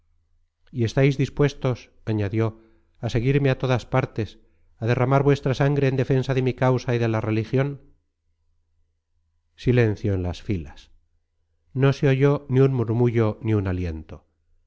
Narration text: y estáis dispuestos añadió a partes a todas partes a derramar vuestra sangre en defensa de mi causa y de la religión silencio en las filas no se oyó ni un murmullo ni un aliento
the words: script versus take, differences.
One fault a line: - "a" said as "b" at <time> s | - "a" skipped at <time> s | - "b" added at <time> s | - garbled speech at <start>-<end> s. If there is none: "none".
- "partes" said as "seguirme" at 3.1 s